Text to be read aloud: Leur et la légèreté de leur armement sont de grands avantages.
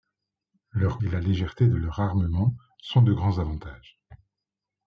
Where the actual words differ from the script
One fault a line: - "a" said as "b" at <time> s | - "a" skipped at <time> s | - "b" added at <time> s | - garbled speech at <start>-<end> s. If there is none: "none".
none